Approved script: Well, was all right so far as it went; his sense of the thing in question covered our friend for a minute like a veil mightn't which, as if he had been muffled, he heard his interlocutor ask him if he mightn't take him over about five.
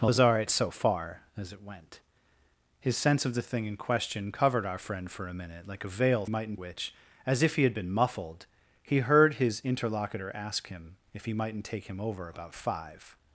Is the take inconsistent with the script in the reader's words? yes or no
no